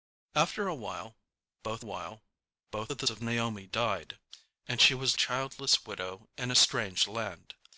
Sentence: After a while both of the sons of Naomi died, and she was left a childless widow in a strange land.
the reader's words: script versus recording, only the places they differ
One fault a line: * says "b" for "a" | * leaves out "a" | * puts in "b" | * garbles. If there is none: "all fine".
* puts in "while both"
* leaves out "sons"
* leaves out "left a"